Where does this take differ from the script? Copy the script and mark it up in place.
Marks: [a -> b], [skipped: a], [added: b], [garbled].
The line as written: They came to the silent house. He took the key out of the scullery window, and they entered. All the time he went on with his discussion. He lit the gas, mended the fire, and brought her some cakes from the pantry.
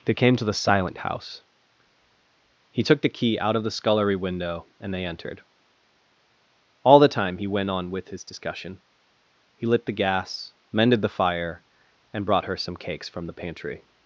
They came to the silent house. He took the key out of the scullery window, and they entered. All the time he went on with his discussion. He lit the gas, mended the fire, and brought her some cakes from the pantry.